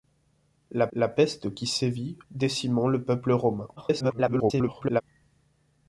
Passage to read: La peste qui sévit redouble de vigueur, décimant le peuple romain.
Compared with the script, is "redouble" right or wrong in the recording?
wrong